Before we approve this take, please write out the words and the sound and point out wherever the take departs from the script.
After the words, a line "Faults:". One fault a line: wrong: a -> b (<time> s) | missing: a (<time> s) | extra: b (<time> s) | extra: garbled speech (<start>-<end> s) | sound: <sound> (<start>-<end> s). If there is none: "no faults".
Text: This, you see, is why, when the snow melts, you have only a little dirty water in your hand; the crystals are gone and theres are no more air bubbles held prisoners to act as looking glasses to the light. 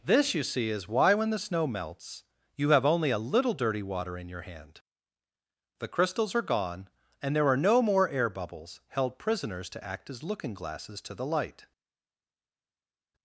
This, you see, is why, when the snow melts, you have only a little dirty water in your hand; the crystals are gone and there are no more air bubbles held prisoners to act as looking glasses to the light.
Faults:
wrong: theres -> there (7.3 s)